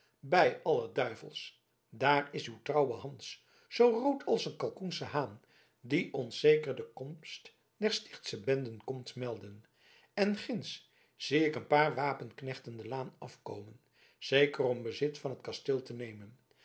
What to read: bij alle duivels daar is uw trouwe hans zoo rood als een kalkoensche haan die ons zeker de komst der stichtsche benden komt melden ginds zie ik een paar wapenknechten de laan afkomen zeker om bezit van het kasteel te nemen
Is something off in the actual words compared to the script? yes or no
yes